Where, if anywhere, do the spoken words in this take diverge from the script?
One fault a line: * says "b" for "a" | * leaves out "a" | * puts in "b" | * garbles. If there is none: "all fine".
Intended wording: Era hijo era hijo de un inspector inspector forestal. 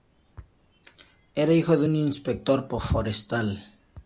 * leaves out "era hijo"
* leaves out "inspector"